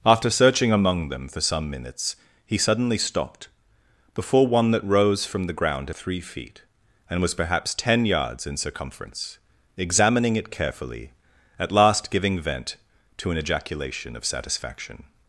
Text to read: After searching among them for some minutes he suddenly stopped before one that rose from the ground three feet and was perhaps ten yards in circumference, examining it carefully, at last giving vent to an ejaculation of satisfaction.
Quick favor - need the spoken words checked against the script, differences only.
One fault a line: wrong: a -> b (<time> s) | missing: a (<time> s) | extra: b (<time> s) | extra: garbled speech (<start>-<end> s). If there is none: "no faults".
no faults